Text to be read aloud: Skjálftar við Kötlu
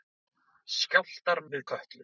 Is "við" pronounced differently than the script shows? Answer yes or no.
no